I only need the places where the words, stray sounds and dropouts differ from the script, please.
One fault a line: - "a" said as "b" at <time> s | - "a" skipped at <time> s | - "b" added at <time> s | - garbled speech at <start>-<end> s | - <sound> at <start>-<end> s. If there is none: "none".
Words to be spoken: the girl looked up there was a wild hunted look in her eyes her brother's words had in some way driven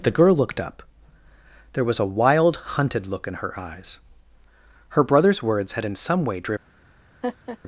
- laugh at 7.2-7.6 s